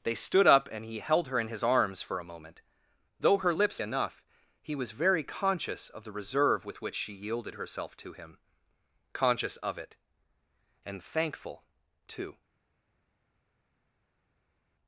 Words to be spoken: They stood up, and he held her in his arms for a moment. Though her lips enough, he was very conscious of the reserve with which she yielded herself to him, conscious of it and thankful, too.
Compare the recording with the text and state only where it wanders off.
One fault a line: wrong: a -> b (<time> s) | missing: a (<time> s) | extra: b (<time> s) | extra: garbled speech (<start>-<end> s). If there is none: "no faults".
no faults